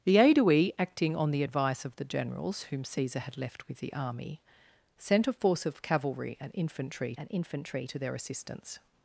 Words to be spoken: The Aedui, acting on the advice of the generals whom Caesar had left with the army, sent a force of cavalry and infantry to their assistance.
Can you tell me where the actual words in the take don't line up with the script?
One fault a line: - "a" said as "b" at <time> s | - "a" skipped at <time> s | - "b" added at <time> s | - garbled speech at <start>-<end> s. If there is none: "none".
- "and infantry" added at 7.2 s